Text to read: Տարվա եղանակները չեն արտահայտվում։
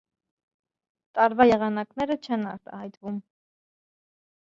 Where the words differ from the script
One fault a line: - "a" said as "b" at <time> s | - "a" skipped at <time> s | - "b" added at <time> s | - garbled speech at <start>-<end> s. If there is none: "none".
none